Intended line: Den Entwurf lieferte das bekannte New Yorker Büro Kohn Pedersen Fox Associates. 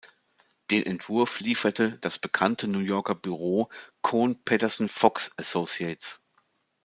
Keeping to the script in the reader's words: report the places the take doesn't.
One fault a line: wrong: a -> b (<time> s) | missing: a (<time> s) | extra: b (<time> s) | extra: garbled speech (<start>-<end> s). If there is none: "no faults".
no faults